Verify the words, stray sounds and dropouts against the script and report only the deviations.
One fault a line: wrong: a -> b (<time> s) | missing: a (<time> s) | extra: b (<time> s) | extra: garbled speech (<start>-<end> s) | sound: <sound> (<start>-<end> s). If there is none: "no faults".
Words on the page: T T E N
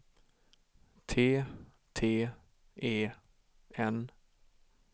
no faults